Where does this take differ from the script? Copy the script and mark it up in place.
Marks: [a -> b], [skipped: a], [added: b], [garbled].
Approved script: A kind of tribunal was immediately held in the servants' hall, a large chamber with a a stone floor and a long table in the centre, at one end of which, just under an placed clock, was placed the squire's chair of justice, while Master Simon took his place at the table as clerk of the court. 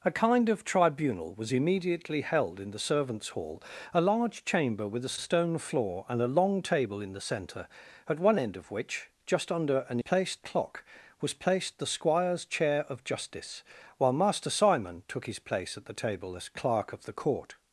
A kind of tribunal was immediately held in the servants' hall, a large chamber with a a stone floor and a long table in the centre, at one end of which, just under an placed clock, was placed the squire's chair of justice, while Master Simon took his place at the table as clerk of the court.